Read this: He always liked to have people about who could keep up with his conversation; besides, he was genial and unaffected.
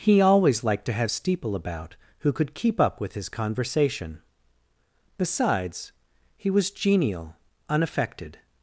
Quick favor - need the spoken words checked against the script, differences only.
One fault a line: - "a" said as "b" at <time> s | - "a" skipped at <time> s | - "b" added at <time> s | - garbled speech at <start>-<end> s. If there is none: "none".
- "people" said as "steeple" at 1.1 s
- "and" skipped at 7.3 s